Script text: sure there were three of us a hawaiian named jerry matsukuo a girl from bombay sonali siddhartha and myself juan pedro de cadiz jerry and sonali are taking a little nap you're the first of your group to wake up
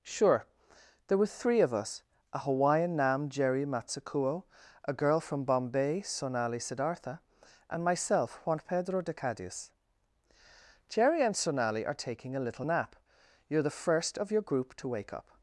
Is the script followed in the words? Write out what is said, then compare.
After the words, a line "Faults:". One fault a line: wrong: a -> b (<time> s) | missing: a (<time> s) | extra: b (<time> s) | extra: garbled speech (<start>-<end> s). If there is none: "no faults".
sure there were three of us a hawaiian nam jerry matsukuo a girl from bombay sonali siddhartha and myself juan pedro de cadiz jerry and sonali are taking a little nap you're the first of your group to wake up
Faults:
wrong: named -> nam (3.0 s)